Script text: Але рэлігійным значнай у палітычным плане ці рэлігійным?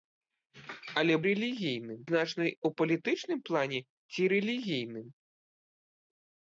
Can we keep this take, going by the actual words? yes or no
yes